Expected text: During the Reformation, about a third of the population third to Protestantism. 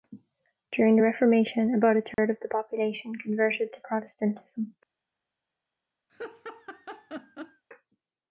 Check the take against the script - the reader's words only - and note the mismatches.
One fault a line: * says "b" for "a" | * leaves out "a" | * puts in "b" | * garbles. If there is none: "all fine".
* says "converted" for "third"